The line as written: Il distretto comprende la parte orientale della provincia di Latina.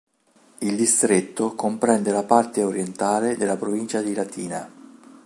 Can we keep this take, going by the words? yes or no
yes